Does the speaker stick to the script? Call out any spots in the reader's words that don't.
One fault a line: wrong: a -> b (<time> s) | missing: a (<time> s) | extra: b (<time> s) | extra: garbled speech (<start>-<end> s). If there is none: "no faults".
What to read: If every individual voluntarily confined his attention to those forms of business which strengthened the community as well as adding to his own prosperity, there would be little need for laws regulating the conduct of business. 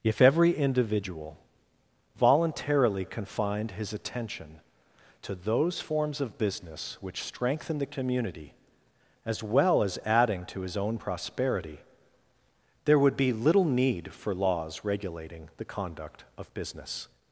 wrong: strengthened -> strengthen (7.2 s)